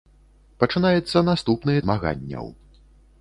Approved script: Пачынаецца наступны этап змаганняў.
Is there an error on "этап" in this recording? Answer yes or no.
yes